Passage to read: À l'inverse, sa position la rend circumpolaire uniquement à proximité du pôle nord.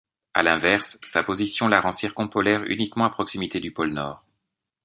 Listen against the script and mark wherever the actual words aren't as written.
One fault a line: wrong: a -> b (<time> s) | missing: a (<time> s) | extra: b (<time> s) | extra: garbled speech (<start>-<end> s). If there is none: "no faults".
no faults